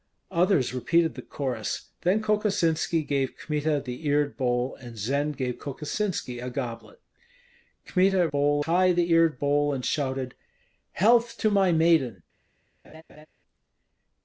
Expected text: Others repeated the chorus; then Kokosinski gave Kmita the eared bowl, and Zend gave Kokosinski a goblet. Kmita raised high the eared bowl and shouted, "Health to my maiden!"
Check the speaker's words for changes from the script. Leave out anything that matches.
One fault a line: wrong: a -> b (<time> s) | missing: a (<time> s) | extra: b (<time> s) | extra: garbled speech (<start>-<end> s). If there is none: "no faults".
wrong: raised -> bowl (8.3 s)